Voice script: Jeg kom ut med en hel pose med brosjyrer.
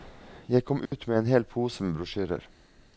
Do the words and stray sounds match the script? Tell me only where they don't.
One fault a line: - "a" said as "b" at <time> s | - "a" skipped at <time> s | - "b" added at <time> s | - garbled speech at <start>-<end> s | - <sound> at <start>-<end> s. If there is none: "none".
- dropout at 0.9-0.9 s